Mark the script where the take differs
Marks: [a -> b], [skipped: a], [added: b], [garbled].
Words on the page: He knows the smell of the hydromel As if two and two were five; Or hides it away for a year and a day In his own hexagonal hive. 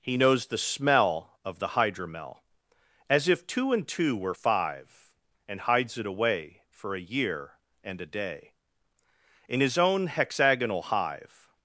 He knows the smell of the hydromel As if two and two were five; [Or -> And] hides it away for a year and a day In his own hexagonal hive.